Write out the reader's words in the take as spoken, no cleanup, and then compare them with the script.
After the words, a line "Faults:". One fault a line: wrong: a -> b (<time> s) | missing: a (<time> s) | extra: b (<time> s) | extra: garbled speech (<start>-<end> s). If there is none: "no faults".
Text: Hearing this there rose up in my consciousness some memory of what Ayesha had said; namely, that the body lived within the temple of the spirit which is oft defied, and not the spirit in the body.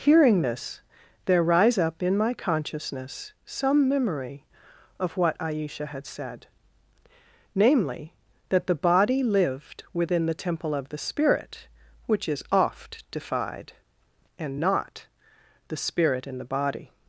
Hearing this there rise up in my consciousness some memory of what Ayesha had said; namely, that the body lived within the temple of the spirit which is oft defied, and not the spirit in the body.
Faults:
wrong: rose -> rise (1.4 s)